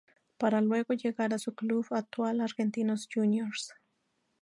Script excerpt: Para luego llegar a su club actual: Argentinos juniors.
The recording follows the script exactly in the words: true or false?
true